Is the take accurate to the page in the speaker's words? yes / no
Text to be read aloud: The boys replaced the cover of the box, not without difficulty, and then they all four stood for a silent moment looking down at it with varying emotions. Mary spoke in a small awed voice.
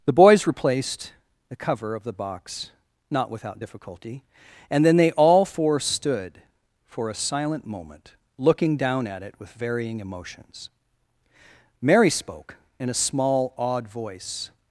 yes